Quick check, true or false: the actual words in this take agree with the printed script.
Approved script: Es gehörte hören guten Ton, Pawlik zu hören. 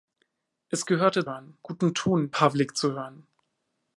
true